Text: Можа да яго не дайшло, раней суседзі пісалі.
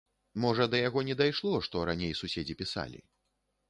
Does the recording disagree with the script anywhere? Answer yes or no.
yes